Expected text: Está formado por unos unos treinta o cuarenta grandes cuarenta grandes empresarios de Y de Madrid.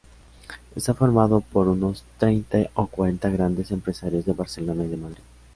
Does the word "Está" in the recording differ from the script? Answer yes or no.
no